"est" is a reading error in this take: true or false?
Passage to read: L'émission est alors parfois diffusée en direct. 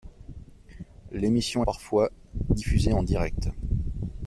true